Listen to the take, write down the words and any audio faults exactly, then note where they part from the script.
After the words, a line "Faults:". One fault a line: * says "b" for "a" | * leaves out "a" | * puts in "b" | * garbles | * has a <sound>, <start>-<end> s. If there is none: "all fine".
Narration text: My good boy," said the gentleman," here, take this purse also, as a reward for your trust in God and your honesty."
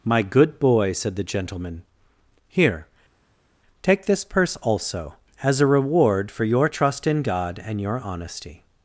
My good boy," said the gentleman," here, take this purse also, as a reward for your trust in God and your honesty."
Faults:
all fine